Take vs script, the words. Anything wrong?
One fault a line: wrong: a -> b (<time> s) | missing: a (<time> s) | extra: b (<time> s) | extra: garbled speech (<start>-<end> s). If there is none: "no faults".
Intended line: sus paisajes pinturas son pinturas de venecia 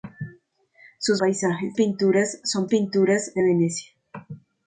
no faults